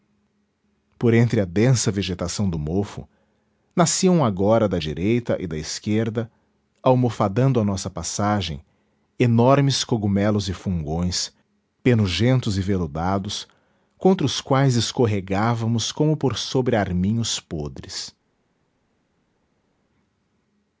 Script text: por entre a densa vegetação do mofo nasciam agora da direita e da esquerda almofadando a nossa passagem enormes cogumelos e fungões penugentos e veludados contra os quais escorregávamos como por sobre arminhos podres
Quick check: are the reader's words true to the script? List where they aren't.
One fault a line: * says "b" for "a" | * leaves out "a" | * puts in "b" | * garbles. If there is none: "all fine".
all fine